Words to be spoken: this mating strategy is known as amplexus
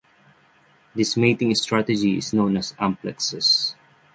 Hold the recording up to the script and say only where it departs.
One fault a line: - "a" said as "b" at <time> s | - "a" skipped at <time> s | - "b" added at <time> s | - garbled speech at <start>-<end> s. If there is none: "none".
none